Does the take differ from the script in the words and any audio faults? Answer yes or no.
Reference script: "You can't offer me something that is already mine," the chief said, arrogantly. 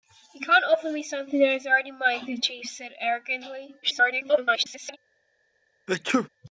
yes